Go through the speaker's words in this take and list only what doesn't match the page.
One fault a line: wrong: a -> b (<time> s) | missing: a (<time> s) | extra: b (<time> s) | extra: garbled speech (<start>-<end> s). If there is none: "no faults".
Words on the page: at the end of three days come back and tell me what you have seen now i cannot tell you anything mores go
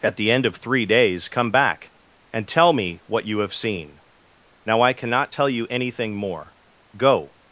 wrong: mores -> more (6.1 s)